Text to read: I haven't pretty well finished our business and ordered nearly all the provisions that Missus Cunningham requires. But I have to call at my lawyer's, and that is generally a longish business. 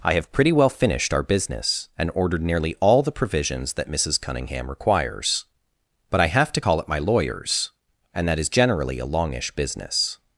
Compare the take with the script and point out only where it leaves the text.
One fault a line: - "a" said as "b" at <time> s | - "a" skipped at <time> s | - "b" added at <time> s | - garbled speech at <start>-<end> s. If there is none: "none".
- "haven't" said as "have" at 0.1 s